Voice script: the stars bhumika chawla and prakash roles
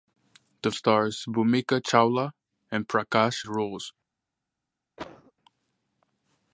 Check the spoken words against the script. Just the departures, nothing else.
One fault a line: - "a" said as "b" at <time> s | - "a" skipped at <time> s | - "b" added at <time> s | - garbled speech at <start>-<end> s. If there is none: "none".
none